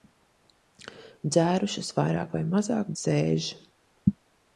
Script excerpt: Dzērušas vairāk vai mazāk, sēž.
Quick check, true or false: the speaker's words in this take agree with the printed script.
true